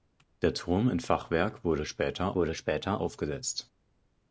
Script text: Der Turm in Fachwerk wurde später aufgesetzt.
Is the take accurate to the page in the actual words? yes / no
no